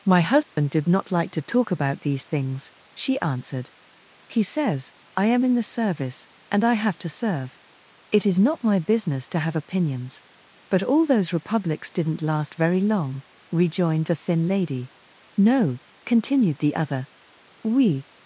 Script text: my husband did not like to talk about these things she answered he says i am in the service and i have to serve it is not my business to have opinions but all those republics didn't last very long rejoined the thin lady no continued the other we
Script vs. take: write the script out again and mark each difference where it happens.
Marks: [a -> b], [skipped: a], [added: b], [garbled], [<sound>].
my husband [dropout] did not like to talk about these things she answered he says i am in the service and i have to serve it is not my business to have opinions but all those republics didn't last very long rejoined the thin lady no continued the other we